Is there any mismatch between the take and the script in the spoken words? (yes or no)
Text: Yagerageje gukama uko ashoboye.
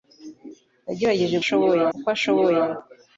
yes